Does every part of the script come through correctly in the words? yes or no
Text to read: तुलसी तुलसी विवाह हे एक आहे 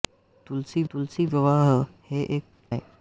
yes